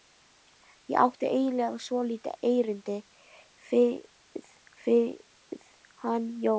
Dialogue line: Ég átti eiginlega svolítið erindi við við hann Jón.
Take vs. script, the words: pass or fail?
pass